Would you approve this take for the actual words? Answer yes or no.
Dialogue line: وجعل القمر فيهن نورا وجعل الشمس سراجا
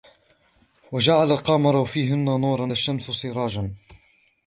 no